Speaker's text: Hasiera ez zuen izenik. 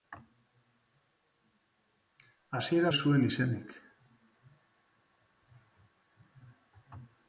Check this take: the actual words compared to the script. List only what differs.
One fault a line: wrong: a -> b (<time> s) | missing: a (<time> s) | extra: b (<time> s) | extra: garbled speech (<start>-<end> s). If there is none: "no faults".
no faults